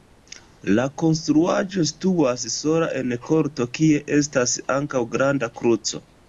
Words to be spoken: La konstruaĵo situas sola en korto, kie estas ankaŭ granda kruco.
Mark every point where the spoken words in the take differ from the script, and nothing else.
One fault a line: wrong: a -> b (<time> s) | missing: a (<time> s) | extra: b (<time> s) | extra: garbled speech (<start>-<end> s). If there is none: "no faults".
no faults